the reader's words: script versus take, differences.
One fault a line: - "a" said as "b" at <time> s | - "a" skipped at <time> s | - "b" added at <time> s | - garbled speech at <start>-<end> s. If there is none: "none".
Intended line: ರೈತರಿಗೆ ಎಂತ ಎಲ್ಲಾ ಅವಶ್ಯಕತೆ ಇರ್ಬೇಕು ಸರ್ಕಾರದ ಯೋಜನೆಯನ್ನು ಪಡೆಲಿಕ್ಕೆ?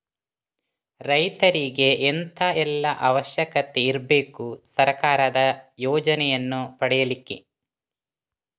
none